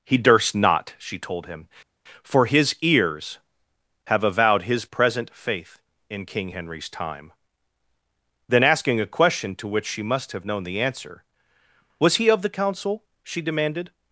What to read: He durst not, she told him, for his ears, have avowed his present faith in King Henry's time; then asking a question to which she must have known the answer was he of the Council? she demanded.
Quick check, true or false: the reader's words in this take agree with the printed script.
true